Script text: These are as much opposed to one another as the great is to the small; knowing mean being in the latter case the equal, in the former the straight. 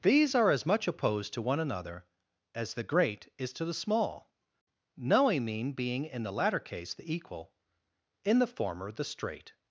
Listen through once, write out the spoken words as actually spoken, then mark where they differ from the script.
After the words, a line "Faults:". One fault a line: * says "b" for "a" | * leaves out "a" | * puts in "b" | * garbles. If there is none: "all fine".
These are as much opposed to one another as the great is to the small; knowing mean being in the latter case the equal, in the former the straight.
Faults:
all fine